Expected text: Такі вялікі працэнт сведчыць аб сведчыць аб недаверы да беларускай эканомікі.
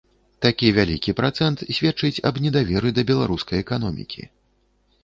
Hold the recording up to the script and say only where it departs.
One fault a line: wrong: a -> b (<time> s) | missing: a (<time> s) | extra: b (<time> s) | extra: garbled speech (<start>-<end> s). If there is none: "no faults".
missing: сведчыць аб (2.4 s)